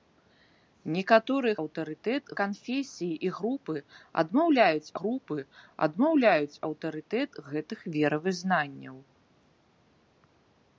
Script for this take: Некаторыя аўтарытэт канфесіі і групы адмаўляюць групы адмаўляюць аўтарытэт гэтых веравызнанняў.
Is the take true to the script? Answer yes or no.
yes